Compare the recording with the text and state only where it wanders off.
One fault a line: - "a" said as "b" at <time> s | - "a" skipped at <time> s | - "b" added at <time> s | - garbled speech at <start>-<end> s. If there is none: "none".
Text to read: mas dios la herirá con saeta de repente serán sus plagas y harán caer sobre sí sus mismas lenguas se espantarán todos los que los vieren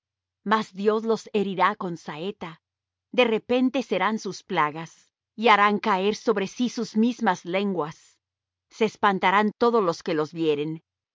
- "la" said as "los" at 1.0 s